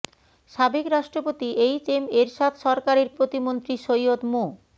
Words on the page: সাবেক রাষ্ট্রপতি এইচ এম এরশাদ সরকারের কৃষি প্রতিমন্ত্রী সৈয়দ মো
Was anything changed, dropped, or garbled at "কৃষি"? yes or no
yes